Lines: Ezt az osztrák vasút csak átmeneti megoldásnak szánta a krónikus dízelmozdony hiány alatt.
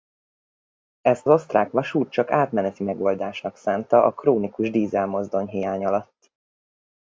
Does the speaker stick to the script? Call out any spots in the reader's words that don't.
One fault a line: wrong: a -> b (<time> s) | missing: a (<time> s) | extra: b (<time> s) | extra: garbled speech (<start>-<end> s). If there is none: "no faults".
missing: az (1.3 s)